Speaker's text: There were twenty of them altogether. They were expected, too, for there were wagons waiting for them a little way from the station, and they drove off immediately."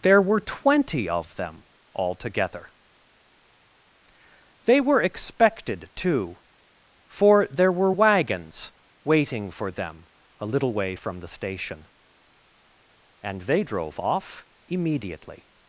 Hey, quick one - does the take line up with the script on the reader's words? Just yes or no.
yes